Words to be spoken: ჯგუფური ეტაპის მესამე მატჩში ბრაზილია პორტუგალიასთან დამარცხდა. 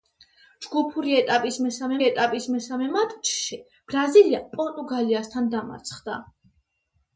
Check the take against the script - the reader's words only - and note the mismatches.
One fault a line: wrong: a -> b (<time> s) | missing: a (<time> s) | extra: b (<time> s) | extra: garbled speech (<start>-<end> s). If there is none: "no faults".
extra: ეტაპის მესამე (2.1 s)